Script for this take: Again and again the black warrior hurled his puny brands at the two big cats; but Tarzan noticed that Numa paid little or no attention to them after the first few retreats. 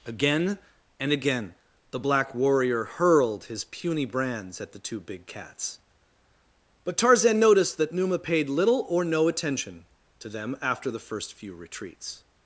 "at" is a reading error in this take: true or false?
false